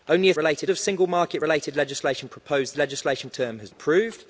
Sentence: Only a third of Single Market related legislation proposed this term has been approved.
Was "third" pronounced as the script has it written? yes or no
no